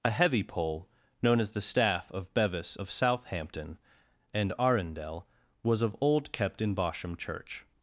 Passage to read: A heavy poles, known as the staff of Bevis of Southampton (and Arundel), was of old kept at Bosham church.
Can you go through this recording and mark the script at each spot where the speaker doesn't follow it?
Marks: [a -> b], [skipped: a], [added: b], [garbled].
A heavy [poles, -> pole] known as the staff of Bevis of Southampton (and Arundel), was of old kept [at -> in] Bosham church.